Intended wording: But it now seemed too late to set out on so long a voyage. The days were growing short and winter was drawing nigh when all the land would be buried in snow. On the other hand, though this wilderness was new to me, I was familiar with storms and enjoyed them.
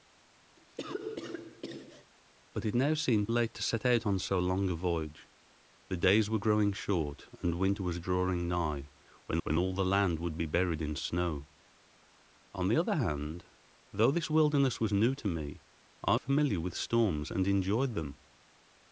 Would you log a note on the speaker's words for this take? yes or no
yes